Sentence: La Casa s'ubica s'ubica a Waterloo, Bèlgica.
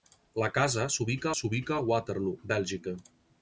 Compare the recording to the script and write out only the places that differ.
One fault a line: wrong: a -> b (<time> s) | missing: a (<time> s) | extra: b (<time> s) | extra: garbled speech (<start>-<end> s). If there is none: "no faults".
no faults